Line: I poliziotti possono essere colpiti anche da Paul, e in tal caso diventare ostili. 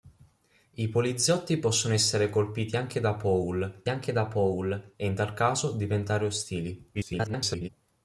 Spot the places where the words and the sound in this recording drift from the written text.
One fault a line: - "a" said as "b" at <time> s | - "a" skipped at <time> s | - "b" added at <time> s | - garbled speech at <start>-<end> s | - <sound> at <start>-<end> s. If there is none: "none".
- "anche da Paul" added at 3.9 s
- garbled speech at 6.9-7.7 s